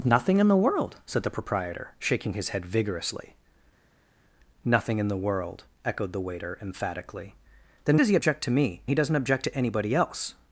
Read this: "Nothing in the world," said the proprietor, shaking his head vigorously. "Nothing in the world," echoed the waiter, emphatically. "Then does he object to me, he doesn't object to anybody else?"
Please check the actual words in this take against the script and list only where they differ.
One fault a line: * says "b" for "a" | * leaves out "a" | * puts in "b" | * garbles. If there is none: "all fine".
all fine